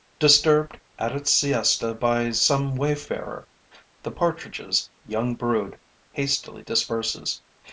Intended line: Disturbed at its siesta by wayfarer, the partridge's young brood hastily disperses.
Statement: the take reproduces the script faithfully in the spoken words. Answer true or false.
false